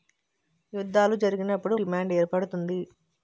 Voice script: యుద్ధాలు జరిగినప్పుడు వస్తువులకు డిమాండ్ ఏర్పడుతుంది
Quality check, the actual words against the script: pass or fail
fail